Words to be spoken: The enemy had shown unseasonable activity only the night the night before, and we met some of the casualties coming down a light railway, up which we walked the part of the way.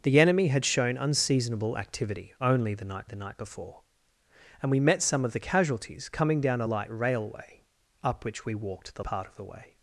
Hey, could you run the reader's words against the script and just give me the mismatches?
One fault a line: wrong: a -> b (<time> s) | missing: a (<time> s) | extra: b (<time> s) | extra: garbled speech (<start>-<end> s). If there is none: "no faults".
no faults